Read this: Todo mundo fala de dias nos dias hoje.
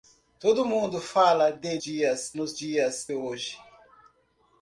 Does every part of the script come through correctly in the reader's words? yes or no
yes